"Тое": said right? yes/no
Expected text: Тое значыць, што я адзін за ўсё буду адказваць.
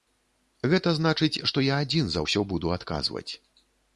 no